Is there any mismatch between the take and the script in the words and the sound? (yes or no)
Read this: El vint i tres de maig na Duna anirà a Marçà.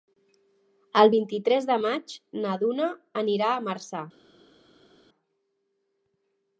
no